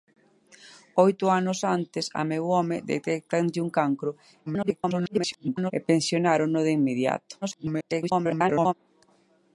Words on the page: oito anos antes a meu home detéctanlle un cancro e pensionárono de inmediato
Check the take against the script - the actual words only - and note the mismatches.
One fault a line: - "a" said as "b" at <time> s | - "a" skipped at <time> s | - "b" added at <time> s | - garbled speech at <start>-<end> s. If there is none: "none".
- garbled speech at 4.5-5.7 s
- garbled speech at 7.4-8.7 s